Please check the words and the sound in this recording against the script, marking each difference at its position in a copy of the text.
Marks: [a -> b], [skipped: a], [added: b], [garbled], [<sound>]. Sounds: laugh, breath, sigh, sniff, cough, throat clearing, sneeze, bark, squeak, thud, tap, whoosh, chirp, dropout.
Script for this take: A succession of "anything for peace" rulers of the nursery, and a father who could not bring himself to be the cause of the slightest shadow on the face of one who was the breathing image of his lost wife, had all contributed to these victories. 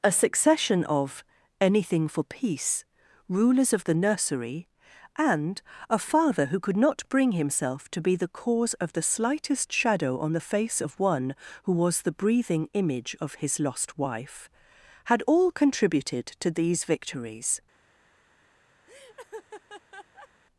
A succession of "anything for peace" rulers of the nursery, and a father who could not bring himself to be the cause of the slightest shadow on the face of one who was the breathing image of his lost wife, had all contributed to these victories. [laugh]